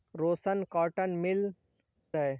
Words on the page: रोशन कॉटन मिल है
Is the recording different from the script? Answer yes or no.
no